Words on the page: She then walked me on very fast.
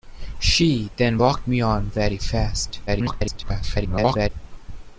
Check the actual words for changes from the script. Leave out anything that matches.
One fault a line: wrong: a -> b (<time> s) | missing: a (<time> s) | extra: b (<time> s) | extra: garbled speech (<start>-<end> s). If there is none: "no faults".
extra: garbled speech (2.9-4.3 s)